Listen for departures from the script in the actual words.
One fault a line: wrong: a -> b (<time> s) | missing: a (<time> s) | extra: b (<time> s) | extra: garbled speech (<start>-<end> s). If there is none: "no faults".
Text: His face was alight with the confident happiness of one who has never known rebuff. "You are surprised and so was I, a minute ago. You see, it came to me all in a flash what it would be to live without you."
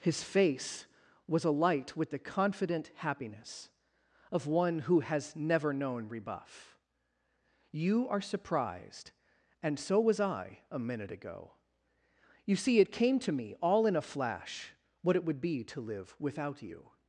no faults